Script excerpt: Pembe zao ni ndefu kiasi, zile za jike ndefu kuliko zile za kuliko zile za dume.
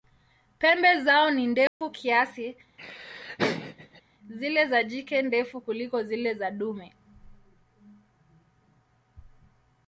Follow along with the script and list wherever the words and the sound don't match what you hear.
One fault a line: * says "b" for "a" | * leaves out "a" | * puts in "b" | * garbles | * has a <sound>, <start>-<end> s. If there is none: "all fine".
* has a dropout, 1.7-1.8 s
* has a laugh, 2.8-4.0 s
* leaves out "kuliko zile za"